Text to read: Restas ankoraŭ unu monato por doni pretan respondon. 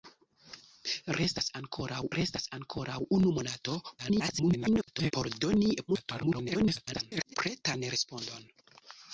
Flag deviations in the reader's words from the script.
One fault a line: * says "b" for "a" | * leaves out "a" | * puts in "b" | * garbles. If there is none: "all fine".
* puts in "restas ankoraŭ"
* garbles
* garbles